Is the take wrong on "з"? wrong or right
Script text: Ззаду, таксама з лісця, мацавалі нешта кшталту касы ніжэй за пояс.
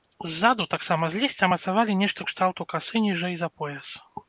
right